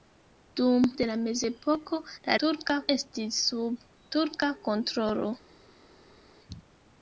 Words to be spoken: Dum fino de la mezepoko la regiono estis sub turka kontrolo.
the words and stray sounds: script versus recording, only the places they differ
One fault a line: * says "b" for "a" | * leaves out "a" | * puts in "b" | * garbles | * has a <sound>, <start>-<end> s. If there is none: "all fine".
* leaves out "fino"
* says "turka" for "regiono"